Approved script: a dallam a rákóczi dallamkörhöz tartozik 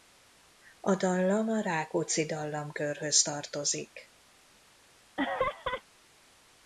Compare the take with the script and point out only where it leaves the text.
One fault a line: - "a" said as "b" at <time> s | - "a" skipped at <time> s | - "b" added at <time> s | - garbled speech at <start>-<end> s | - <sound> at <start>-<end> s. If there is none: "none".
- laugh at 5.2-5.8 s